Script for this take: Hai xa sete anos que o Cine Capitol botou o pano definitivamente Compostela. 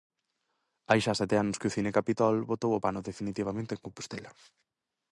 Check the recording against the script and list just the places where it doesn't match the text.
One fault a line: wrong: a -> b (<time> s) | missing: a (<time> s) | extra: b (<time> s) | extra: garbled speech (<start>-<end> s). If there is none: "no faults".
extra: en (3.7 s)